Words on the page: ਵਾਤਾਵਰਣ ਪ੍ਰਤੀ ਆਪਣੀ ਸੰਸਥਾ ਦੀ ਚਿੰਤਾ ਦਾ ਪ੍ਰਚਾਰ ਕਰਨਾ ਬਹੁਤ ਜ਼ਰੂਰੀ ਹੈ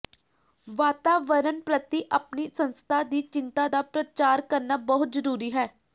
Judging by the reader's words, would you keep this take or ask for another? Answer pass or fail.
pass